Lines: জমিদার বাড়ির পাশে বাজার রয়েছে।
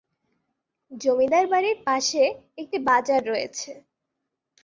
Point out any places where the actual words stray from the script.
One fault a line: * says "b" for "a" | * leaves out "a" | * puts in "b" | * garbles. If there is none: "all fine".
* puts in "একটি"